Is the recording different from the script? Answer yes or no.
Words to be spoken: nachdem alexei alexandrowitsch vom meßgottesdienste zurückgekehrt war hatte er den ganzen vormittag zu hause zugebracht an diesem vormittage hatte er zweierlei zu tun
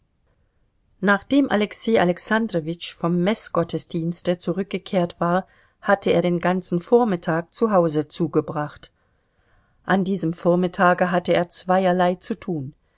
no